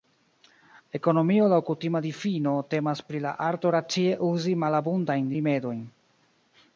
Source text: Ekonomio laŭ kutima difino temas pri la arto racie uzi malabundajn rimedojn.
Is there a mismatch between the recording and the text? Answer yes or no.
no